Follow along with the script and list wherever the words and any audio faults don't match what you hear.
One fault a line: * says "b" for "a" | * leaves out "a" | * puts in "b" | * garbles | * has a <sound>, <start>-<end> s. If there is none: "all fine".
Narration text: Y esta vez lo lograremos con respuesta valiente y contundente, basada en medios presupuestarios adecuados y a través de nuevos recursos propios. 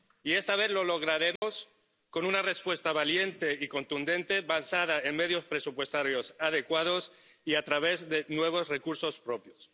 * has a dropout, 1.4-1.4 s
* puts in "una"